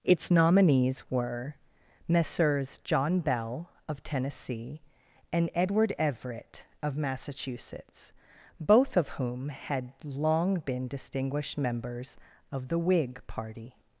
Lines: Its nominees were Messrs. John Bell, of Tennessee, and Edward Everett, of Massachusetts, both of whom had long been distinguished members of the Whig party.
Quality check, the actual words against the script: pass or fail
pass